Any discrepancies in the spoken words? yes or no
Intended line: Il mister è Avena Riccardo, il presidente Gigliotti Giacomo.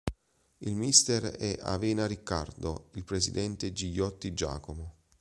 no